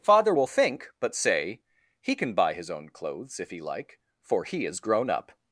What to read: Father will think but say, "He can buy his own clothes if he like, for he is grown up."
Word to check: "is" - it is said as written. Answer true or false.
true